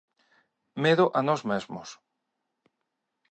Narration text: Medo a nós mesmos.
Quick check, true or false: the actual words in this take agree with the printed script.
true